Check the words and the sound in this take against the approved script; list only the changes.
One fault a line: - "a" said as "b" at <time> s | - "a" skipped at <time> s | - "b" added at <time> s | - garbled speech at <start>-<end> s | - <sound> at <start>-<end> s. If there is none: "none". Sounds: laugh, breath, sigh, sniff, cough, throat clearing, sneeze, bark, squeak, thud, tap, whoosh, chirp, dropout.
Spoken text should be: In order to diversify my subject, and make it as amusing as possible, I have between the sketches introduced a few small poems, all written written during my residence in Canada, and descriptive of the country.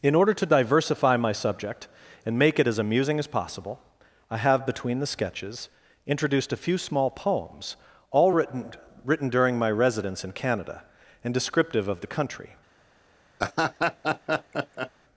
- laugh at 13.4-14.9 s